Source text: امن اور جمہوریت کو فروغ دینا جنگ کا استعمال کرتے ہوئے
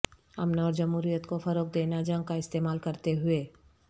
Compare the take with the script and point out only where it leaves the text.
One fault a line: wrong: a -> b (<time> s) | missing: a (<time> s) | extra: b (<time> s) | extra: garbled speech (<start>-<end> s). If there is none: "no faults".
no faults